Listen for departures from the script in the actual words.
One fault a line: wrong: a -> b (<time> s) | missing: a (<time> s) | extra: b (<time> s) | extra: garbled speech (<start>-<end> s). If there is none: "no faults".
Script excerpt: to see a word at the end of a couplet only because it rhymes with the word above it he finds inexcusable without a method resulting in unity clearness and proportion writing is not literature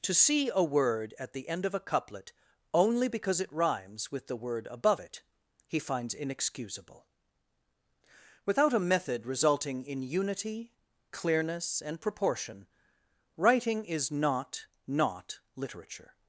extra: not (14.9 s)